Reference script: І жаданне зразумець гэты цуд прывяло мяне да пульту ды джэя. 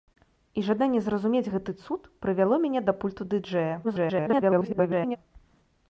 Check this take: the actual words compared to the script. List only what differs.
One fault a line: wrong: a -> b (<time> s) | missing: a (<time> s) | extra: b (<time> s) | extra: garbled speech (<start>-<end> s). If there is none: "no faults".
extra: garbled speech (3.8-5.2 s)